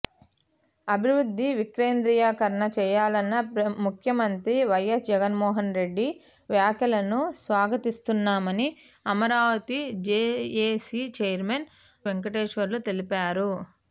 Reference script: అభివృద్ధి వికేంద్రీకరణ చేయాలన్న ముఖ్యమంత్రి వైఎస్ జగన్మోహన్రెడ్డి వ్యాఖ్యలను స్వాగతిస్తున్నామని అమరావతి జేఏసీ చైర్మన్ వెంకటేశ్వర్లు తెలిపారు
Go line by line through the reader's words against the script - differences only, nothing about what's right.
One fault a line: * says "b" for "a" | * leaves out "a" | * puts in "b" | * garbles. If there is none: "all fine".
all fine